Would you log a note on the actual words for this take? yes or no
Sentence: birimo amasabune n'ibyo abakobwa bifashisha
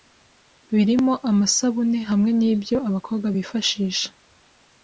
yes